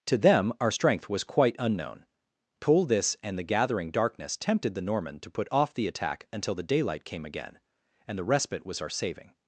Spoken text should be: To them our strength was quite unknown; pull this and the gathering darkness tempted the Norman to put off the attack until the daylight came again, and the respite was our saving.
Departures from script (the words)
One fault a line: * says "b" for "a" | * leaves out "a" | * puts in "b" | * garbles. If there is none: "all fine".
all fine